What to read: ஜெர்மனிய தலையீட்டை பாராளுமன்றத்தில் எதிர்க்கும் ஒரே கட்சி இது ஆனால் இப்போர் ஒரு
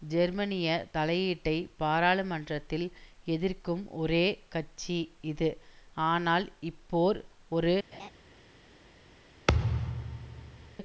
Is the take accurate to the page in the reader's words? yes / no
yes